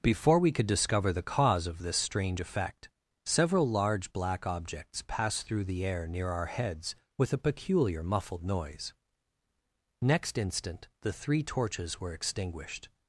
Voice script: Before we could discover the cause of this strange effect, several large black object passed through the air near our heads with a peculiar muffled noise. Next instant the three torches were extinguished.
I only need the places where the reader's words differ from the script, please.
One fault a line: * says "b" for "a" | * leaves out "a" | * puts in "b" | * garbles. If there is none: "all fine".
* says "objects" for "object"